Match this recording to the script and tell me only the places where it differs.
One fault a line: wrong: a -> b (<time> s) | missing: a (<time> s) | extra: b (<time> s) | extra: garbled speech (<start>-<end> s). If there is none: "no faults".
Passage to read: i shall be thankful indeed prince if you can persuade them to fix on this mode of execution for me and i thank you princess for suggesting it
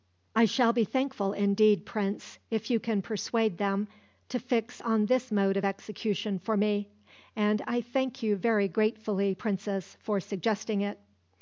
extra: very gratefully (8.4 s)